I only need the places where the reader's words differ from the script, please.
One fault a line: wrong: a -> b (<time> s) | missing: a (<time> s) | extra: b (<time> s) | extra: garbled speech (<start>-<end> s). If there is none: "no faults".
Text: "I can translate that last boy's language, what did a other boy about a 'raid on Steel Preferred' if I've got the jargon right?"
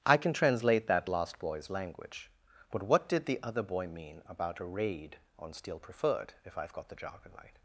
extra: but (2.7 s)
wrong: a -> the (3.3 s)
extra: mean (3.9 s)